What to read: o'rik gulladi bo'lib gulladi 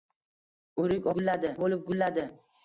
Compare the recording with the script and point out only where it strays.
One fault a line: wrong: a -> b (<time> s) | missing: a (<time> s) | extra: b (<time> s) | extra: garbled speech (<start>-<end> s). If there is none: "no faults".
no faults